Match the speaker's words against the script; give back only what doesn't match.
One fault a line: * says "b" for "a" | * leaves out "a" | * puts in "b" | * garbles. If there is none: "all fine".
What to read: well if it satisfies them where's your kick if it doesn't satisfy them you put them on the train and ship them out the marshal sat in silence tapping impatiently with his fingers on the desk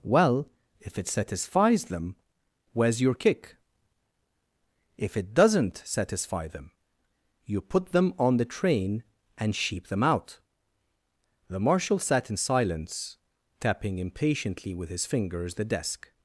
* says "sheep" for "ship"
* leaves out "on"